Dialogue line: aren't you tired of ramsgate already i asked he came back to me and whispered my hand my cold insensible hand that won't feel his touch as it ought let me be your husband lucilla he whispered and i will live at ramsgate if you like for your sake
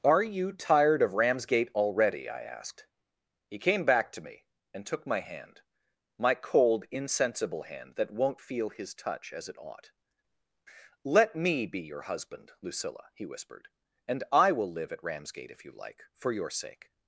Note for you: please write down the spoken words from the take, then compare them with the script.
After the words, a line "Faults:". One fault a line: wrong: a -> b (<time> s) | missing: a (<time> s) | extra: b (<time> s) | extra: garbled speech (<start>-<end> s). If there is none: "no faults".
are you tired of ramsgate already i asked he came back to me and took my hand my cold insensible hand that won't feel his touch as it ought let me be your husband lucilla he whispered and i will live at ramsgate if you like for your sake
Faults:
wrong: aren't -> are (0.0 s)
wrong: whispered -> took (4.8 s)